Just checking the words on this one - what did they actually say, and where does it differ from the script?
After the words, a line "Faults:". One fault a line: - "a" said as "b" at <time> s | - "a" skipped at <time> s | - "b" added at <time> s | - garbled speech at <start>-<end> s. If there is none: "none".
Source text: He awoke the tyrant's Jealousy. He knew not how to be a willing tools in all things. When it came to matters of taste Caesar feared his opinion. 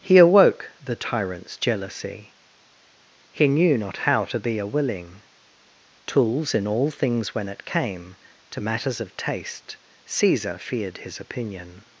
He awoke the tyrant's Jealousy. He knew not how to be a willing tools in all things. When it came to matters of taste Caesar feared his opinion.
Faults:
none